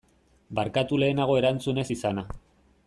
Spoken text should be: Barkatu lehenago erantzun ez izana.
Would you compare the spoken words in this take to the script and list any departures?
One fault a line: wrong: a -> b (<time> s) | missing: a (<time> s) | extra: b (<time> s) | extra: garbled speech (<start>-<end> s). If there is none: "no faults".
no faults